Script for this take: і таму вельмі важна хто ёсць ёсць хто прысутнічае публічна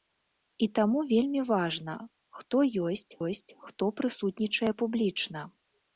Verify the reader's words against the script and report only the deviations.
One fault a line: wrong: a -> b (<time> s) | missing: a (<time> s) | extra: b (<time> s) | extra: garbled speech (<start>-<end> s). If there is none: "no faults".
no faults